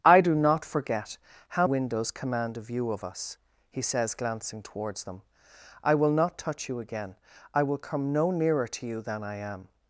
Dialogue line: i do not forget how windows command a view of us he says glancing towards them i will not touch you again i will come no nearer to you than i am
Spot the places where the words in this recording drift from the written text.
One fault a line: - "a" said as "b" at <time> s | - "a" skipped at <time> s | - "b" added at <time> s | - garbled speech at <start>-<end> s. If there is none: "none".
none